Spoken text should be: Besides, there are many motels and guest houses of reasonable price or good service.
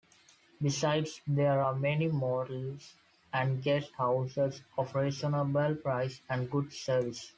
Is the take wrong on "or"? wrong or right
wrong